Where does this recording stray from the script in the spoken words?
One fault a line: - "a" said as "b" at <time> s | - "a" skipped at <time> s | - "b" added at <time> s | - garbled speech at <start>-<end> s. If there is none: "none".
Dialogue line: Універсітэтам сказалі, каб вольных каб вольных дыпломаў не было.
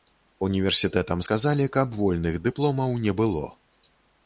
- "каб вольных" skipped at 2.4 s